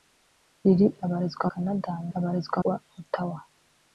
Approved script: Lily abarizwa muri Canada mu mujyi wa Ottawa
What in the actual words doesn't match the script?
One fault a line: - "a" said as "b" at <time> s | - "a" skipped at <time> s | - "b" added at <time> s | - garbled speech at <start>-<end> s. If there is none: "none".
- "muri" skipped at 1.5 s
- "mujyi" said as "abarizwa" at 2.2 s